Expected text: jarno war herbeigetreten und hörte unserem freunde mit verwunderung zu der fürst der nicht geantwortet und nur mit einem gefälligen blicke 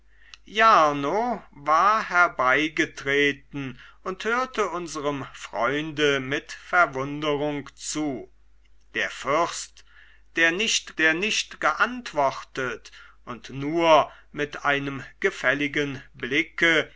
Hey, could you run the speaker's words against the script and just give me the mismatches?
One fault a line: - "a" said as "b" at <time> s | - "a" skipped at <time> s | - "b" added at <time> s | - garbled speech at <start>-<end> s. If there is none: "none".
- "der nicht" added at 11.0 s